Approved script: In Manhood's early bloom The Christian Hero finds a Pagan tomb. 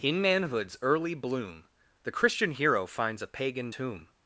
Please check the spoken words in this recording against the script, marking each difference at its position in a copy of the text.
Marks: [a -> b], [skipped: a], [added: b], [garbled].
In Manhood's early bloom The Christian Hero finds a Pagan tomb.